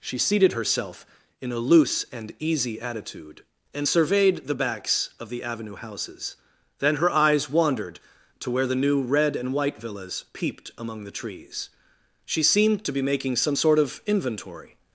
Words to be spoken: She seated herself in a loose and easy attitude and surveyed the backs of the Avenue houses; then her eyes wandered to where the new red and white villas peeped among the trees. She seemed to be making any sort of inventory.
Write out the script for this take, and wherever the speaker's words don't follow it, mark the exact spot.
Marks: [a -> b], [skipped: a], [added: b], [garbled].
She seated herself in a loose and easy attitude and surveyed the backs of the Avenue houses; then her eyes wandered to where the new red and white villas peeped among the trees. She seemed to be making [any -> some] sort of inventory.